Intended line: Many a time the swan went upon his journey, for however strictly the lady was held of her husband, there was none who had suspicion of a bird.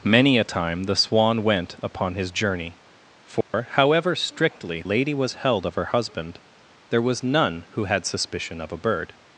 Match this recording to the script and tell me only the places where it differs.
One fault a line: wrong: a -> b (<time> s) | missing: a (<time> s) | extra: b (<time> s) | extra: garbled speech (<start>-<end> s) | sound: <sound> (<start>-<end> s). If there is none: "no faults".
sound: dropout (3.4-3.5 s)
missing: the (4.8 s)